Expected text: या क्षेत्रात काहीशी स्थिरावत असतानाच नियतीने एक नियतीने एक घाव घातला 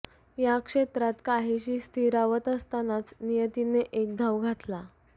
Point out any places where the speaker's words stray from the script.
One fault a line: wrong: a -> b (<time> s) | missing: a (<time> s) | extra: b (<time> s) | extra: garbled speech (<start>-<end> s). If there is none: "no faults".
missing: नियतीने एक (4.2 s)